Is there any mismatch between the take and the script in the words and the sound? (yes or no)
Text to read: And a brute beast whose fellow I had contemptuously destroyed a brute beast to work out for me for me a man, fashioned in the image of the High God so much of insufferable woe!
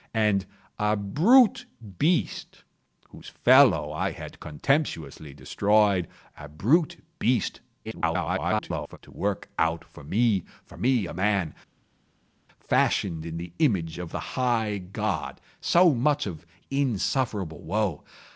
yes